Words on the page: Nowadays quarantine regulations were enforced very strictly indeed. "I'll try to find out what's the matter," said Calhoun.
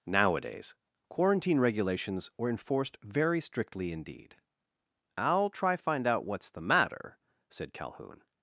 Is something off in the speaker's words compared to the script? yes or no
yes